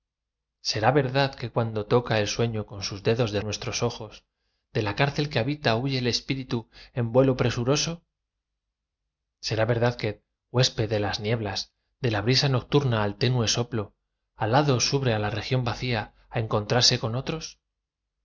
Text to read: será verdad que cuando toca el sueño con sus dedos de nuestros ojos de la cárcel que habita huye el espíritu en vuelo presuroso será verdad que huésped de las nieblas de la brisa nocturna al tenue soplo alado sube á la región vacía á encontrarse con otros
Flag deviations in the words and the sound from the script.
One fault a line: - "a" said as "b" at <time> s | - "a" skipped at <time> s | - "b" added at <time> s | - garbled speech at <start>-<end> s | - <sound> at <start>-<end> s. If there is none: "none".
none